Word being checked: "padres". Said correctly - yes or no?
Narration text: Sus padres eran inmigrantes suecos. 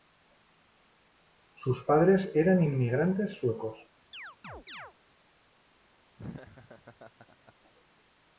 yes